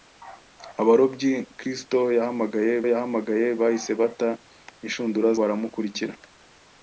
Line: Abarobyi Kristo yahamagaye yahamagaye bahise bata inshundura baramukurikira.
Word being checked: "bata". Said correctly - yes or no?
yes